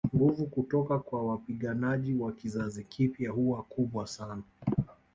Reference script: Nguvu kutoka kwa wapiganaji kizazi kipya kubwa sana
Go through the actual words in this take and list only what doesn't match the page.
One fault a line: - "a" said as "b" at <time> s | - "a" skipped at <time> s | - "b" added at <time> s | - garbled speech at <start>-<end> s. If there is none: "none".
- "wa" added at 2.1 s
- "huwa" added at 3.3 s